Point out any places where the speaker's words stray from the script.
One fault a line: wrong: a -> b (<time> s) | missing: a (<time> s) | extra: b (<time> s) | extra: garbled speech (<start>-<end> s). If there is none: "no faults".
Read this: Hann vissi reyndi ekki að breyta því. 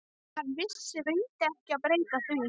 no faults